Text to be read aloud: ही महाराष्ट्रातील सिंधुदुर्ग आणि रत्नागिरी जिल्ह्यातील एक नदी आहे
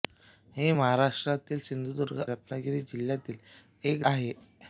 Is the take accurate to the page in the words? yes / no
no